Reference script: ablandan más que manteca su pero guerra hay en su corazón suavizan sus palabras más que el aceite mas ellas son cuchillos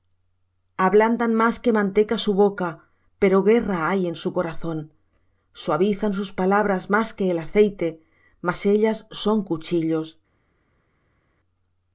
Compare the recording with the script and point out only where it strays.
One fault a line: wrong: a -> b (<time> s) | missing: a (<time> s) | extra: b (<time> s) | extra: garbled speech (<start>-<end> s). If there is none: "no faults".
extra: boca (2.3 s)